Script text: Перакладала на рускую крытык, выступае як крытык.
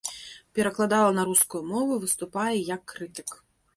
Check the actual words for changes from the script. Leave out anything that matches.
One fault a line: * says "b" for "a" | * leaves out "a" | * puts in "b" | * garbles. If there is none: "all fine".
* says "мову" for "крытык"